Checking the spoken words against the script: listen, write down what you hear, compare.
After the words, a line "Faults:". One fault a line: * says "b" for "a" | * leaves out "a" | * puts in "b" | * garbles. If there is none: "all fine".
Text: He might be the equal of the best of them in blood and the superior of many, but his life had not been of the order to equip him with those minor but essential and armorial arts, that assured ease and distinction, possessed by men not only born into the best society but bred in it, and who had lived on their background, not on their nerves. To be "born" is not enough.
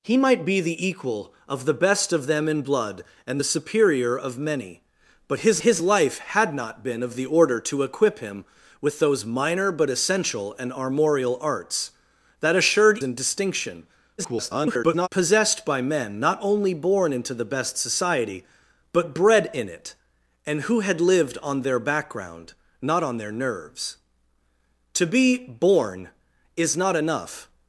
He might be the equal of the best of them in blood and the superior of many, but his his life had not been of the order to equip him with those minor but essential and armorial arts, that assured and distinction, [garbled] possessed by men not only born into the best society but bred in it, and who had lived on their background, not on their nerves. To be "born" is not enough.
Faults:
* puts in "his"
* leaves out "ease"
* garbles